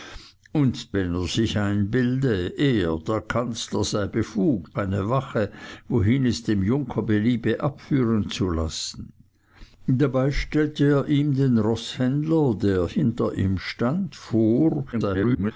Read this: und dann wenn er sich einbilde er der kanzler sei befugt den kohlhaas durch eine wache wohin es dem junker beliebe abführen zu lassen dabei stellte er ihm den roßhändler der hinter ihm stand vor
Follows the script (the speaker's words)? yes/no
no